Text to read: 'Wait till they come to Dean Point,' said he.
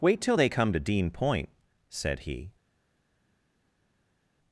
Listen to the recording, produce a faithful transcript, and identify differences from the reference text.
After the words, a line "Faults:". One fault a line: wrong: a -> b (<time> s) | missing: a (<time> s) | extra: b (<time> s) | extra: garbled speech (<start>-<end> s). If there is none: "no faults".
'Wait till they come to Dean Point,' said he.
Faults:
no faults